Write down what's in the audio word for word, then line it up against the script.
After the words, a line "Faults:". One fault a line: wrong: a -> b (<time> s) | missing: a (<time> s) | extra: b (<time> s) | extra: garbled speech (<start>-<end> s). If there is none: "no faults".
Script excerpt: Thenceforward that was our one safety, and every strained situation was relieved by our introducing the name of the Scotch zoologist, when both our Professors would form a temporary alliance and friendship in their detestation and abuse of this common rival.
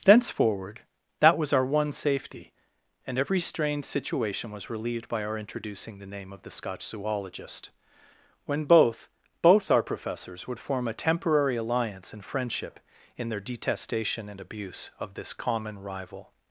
Thenceforward that was our one safety, and every strained situation was relieved by our introducing the name of the Scotch zoologist, when both both our Professors would form a temporary alliance and friendship in their detestation and abuse of this common rival.
Faults:
extra: both (9.4 s)